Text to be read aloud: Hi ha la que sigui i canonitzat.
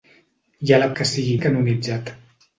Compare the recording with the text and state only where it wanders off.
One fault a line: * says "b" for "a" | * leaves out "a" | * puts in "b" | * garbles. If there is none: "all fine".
all fine